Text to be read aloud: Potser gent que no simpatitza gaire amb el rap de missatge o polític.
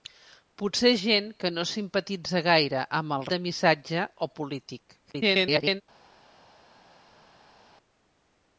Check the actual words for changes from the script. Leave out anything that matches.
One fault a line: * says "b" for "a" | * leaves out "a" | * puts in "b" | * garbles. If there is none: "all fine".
* leaves out "rap"
* garbles